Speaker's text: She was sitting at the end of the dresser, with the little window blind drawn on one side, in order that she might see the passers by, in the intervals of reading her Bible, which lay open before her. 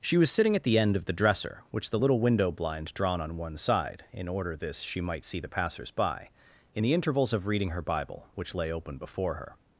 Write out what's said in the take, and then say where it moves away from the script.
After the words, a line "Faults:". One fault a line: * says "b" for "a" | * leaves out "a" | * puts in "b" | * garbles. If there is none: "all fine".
She was sitting at the end of the dresser, which the little window blind drawn on one side, in order this she might see the passers by, in the intervals of reading her Bible, which lay open before her.
Faults:
* says "which" for "with"
* says "this" for "that"